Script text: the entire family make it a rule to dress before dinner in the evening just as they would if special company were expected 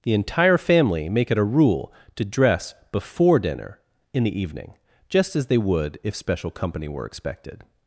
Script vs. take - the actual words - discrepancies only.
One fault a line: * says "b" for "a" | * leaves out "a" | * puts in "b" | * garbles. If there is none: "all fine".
all fine